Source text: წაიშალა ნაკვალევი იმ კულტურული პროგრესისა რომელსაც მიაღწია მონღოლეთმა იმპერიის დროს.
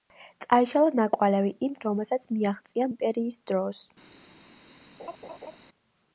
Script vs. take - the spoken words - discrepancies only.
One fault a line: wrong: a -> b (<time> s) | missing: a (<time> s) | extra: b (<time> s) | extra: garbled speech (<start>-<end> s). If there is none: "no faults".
missing: კულტურული პროგრესისა (1.8 s)
missing: მონღოლეთმა (2.9 s)